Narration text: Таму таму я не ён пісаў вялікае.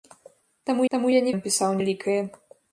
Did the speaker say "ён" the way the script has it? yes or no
yes